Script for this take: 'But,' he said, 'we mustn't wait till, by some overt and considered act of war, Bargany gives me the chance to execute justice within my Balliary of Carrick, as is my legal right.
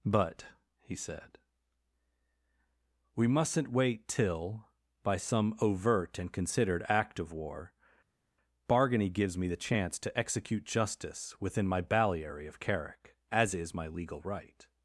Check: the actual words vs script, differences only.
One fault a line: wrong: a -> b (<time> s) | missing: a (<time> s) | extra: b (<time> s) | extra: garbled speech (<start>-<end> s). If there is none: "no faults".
no faults